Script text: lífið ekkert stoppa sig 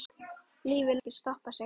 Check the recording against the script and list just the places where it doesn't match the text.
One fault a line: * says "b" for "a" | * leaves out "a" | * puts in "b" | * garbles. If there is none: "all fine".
all fine